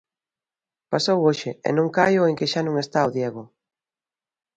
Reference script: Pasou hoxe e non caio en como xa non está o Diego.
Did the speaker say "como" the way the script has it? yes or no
no